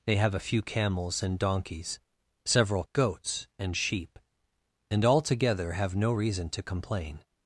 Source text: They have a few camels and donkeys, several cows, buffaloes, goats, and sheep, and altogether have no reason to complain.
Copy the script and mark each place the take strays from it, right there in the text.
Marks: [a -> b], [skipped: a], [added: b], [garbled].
They have a few camels and donkeys, several [skipped: cows, buffaloes,] goats, and sheep, and altogether have no reason to complain.